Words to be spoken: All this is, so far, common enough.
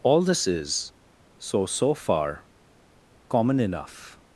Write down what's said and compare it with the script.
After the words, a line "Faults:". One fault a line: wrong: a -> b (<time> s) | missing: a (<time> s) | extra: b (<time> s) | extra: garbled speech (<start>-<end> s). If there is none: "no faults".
All this is, so so far, common enough.
Faults:
extra: so (1.7 s)